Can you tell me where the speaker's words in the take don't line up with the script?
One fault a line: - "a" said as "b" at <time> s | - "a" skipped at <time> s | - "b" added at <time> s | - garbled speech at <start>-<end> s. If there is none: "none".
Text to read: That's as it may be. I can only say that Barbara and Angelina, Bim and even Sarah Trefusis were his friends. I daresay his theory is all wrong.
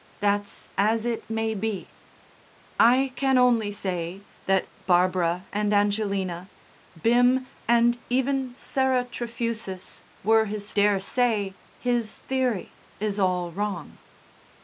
- "friends I" skipped at 10.7 s